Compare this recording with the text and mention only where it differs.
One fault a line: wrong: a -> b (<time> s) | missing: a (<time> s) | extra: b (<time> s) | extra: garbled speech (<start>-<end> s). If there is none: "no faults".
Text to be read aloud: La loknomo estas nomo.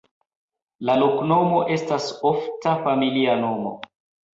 extra: ofta familia (2.3 s)